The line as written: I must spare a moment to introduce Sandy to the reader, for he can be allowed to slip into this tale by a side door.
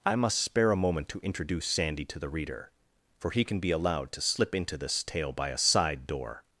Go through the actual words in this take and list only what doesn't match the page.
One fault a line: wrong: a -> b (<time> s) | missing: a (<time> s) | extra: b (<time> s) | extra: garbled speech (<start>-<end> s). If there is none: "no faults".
no faults